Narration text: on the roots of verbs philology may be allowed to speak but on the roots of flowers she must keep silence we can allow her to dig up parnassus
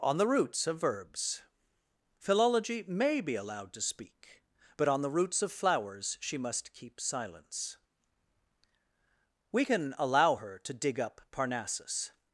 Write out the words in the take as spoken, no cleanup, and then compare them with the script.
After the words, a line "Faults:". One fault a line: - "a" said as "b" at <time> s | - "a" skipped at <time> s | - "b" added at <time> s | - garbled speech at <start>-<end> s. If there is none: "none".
on the roots of verbs philology may be allowed to speak but on the roots of flowers she must keep silence we can allow her to dig up parnassus
Faults:
none